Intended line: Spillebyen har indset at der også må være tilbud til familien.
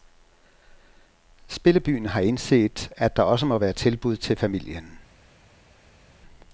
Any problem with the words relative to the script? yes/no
no